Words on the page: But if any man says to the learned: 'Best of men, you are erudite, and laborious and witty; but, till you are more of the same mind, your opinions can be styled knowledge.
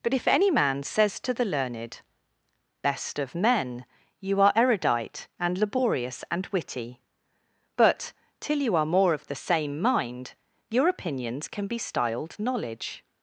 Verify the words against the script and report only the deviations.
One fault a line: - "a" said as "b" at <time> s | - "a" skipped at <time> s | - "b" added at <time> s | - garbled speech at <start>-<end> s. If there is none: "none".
none